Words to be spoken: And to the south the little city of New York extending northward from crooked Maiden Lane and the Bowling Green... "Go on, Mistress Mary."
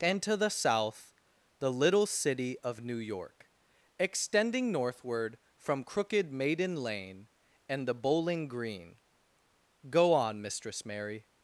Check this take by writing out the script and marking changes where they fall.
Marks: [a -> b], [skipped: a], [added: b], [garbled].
And to the south the little city of New York extending northward from crooked Maiden Lane and the Bowling Green... "Go on, Mistress Mary."